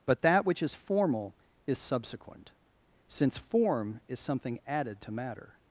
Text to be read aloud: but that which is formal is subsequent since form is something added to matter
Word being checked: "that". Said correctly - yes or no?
yes